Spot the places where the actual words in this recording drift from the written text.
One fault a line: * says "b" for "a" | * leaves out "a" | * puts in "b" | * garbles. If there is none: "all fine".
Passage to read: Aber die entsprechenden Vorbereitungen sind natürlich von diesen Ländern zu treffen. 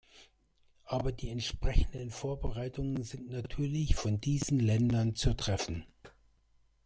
all fine